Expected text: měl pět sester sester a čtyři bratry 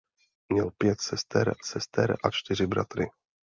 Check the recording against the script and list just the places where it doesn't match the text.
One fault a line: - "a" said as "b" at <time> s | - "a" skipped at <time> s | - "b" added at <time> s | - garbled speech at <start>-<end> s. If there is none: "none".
none